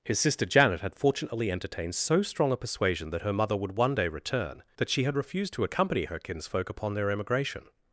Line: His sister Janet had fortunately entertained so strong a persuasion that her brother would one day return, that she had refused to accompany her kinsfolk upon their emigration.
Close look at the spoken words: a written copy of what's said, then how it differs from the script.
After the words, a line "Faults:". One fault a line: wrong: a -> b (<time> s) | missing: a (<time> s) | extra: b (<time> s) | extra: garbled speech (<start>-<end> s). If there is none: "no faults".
His sister Janet had fortunately entertained so strong a persuasion that her mother would one day return, that she had refused to accompany her kinsfolk upon their emigration.
Faults:
wrong: brother -> mother (3.3 s)